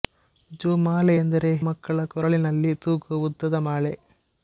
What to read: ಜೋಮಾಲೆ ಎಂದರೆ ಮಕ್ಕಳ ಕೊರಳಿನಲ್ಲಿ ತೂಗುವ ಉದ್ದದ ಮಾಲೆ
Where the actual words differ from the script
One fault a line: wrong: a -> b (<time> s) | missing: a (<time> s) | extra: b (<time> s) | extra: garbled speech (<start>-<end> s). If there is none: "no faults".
no faults